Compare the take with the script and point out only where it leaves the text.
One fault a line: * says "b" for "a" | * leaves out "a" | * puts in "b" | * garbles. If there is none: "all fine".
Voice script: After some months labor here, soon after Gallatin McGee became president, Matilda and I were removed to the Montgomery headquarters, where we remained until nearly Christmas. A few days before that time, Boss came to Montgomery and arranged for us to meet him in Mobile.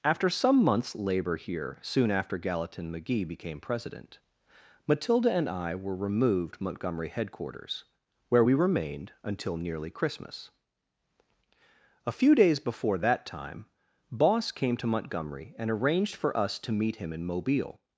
* leaves out "to the"